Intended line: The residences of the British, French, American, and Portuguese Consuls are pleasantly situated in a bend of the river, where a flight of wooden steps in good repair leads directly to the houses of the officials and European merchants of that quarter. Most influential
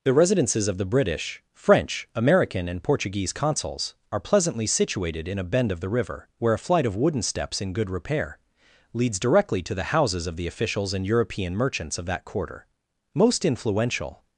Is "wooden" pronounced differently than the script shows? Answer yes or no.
no